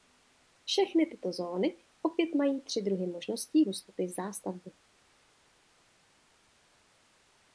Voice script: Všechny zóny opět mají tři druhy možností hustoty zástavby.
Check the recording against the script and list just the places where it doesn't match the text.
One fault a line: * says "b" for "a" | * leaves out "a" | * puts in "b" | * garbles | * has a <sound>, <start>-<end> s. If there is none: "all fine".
* puts in "tyto"